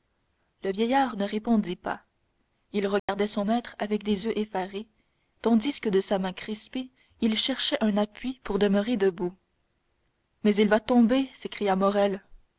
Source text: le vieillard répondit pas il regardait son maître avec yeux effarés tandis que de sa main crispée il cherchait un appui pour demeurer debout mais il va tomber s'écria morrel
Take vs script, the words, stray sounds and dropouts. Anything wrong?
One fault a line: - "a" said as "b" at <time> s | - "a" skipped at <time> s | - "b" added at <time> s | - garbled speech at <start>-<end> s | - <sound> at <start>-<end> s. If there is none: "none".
- "ne" added at 1.1 s
- dropout at 3.0-3.1 s
- "des" added at 4.0 s